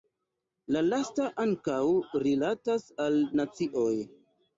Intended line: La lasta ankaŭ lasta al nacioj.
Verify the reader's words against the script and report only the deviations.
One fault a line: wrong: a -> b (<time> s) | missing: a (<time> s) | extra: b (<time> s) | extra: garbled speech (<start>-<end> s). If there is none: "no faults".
wrong: lasta -> rilatas (2.2 s)